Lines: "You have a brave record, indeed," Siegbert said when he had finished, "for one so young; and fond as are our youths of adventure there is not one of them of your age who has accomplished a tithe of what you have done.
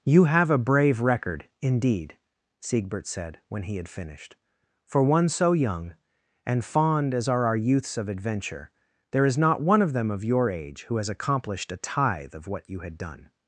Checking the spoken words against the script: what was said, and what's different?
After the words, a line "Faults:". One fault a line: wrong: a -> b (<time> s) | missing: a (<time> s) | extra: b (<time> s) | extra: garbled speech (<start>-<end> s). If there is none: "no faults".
"You have a brave record, indeed," Siegbert said when he had finished, "for one so young; and fond as are our youths of adventure there is not one of them of your age who has accomplished a tithe of what you had done.
Faults:
wrong: have -> had (12.8 s)